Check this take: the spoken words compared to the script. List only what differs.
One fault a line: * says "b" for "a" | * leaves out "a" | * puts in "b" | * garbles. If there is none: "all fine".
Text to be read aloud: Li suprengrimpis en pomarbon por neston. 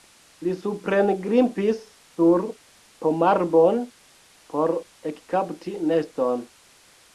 * says "sur" for "en"
* puts in "ekkapti"